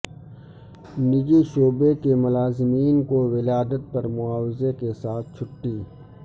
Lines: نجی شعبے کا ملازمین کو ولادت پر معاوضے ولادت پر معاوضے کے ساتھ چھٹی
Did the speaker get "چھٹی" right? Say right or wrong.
right